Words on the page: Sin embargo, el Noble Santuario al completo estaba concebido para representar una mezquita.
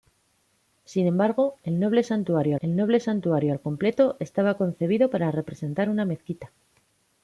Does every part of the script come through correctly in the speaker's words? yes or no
no